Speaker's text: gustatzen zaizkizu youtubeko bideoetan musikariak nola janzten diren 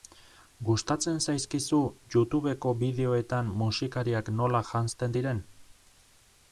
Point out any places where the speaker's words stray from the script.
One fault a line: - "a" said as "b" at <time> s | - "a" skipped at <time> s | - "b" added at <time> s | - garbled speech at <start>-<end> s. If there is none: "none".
none